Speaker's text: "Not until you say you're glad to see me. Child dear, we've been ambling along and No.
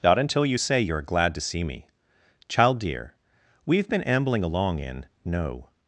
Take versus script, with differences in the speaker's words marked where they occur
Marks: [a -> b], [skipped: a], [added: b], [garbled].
"Not until you say you're glad to see me. Child dear, we've been ambling along [and -> in] No.